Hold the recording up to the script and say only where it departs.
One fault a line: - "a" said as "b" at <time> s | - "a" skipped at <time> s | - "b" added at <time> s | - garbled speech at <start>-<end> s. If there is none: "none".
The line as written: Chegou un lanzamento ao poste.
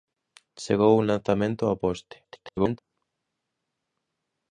- garbled speech at 2.2-2.8 s